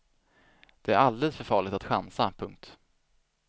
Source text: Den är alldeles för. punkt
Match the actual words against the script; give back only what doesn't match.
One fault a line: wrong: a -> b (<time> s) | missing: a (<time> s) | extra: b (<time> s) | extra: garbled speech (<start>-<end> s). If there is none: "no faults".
wrong: Den -> Det (0.8 s)
extra: farligt att chansa (1.4 s)